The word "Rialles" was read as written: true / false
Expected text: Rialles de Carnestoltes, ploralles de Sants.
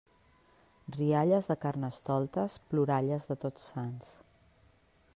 true